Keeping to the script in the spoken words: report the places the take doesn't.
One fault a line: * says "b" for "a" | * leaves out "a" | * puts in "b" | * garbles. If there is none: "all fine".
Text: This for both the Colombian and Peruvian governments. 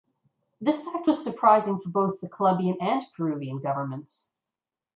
* puts in "fact was surprising"